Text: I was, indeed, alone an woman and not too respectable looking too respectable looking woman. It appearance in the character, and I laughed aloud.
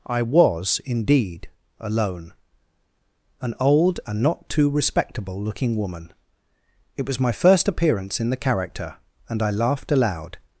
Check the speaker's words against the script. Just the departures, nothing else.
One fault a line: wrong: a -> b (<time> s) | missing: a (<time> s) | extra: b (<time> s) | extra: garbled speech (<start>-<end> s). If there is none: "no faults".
wrong: woman -> old (3.6 s)
wrong: too respectable looking woman It -> woman It was my first (5.8 s)